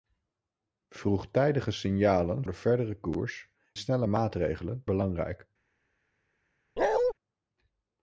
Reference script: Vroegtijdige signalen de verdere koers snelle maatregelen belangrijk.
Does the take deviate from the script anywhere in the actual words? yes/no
no